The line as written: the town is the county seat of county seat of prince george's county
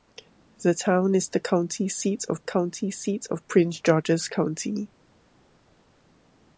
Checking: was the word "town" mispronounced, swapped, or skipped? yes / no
no